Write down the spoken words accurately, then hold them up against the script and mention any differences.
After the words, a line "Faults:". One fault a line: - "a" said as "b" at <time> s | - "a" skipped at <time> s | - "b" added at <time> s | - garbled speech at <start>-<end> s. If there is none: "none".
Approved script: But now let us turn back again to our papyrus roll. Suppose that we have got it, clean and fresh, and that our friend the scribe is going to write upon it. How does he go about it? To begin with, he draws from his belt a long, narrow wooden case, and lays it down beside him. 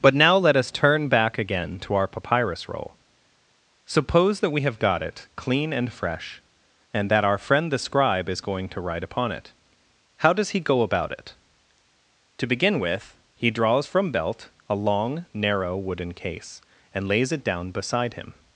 But now let us turn back again to our papyrus roll. Suppose that we have got it, clean and fresh, and that our friend the scribe is going to write upon it. How does he go about it? To begin with, he draws from belt a long, narrow wooden case, and lays it down beside him.
Faults:
- "his" skipped at 14.1 s